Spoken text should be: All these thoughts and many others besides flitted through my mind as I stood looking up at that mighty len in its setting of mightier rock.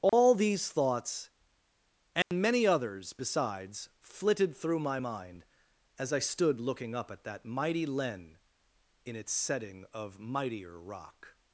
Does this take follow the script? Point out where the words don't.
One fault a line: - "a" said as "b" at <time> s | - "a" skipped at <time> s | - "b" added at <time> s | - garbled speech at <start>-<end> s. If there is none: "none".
none